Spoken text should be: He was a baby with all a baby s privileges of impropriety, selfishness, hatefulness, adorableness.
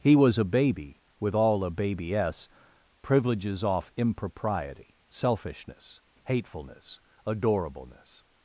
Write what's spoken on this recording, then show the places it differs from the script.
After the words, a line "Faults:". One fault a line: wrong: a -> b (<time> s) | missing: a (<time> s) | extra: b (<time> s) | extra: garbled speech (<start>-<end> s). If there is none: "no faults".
He was a baby with all a baby s privileges off impropriety, selfishness, hatefulness, adorableness.
Faults:
wrong: of -> off (3.6 s)